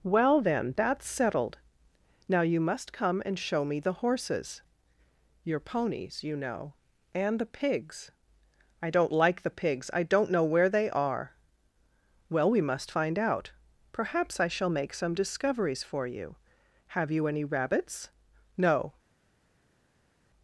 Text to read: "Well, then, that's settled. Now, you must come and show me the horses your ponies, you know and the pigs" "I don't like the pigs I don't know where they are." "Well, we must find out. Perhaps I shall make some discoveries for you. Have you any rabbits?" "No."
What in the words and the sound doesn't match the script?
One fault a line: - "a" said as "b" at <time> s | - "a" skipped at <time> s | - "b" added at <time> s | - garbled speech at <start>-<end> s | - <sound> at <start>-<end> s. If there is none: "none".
none